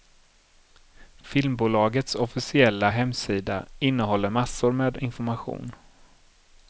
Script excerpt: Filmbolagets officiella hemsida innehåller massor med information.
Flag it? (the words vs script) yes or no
no